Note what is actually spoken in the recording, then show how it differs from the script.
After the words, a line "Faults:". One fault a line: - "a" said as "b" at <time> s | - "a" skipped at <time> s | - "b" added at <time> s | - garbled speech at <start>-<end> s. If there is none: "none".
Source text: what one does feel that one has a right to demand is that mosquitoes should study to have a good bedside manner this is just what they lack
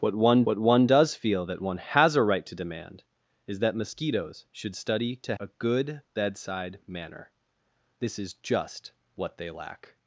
what one what one does feel that one has a right to demand is that mosquitoes should study to a good bedside manner this is just what they lack
Faults:
- "what one" added at 0.4 s
- "have" skipped at 5.4 s